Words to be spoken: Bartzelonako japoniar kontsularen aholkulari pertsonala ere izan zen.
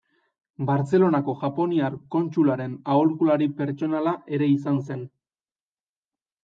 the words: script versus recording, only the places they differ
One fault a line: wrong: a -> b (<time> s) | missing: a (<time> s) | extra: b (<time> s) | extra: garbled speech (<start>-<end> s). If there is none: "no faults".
no faults